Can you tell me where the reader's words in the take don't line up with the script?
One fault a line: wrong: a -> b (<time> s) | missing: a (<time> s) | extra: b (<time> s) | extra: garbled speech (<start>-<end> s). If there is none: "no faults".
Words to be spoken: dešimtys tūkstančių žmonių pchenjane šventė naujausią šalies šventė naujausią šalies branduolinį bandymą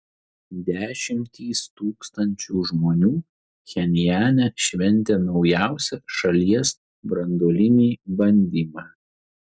missing: šventė naujausią šalies (6.8 s)